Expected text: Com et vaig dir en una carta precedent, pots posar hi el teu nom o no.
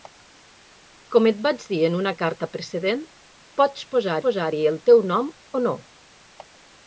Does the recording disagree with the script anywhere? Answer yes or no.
yes